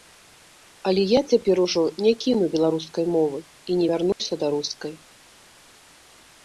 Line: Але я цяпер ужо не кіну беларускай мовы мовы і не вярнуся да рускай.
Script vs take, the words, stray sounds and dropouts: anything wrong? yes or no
yes